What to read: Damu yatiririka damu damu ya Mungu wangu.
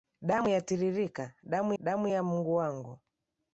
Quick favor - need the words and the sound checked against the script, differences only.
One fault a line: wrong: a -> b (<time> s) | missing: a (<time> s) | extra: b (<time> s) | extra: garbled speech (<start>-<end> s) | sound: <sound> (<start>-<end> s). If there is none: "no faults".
no faults